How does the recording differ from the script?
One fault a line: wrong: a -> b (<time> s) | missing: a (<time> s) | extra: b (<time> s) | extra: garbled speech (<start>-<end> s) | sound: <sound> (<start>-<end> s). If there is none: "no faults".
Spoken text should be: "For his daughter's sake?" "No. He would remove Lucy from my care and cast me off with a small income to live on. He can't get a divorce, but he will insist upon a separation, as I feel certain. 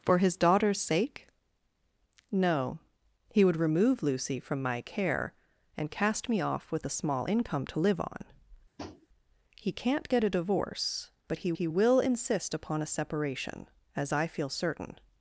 sound: tap (8.8-9.1 s)
extra: he (11.5 s)